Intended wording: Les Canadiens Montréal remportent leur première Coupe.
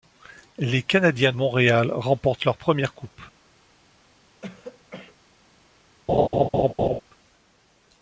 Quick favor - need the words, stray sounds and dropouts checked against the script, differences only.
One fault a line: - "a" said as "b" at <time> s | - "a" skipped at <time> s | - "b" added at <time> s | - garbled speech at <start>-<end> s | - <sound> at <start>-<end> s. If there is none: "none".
- throat clearing at 4.4-5.2 s
- laugh at 6.1-7.0 s